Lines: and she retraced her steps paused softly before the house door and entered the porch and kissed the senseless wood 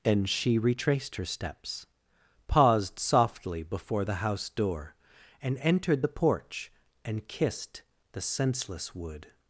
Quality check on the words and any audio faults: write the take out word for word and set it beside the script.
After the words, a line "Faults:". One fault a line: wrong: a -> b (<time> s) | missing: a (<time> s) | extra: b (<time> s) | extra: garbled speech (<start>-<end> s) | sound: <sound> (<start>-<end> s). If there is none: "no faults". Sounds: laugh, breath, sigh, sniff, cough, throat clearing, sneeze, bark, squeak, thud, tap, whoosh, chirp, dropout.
and she retraced her steps paused softly before the house door and entered the porch and kissed the senseless wood
Faults:
no faults